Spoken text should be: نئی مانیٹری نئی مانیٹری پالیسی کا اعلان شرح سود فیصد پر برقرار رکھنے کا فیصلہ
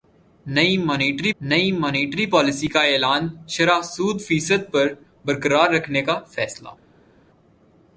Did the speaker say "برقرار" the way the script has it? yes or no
yes